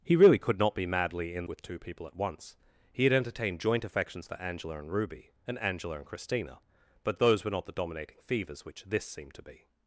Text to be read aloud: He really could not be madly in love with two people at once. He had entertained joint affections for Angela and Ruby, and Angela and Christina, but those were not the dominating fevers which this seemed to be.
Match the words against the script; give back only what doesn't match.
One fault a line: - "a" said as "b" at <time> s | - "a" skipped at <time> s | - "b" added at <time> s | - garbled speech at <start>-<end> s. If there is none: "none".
- "love" skipped at 1.5 s